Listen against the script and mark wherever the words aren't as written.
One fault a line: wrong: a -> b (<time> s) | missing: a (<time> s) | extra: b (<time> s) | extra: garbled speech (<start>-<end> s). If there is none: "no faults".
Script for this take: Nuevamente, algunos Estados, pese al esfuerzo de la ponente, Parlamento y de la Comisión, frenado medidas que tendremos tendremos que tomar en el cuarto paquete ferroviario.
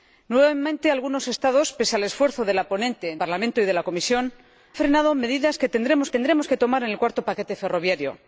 no faults